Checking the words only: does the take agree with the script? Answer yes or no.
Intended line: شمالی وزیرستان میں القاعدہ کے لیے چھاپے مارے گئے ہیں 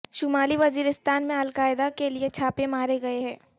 yes